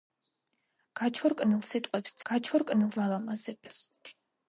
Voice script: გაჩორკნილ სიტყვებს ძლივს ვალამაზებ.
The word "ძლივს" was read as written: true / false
false